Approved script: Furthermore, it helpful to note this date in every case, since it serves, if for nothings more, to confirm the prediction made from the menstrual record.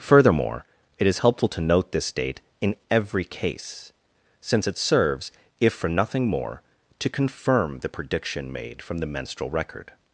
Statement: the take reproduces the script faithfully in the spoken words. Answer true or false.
false